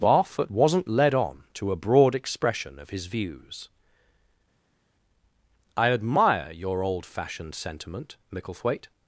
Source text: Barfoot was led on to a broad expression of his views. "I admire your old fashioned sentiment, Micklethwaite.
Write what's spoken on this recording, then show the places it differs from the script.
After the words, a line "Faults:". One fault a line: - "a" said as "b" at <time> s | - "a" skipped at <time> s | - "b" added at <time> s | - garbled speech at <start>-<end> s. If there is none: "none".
Barfoot wasn't led on to a broad expression of his views. "I admire your old fashioned sentiment, Micklethwaite.
Faults:
- "was" said as "wasn't" at 0.5 s